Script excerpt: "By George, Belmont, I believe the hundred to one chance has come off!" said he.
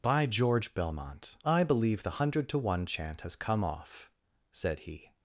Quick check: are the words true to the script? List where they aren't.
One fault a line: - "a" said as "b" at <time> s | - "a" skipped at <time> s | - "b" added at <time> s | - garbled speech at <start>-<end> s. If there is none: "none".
- "chance" said as "chant" at 2.8 s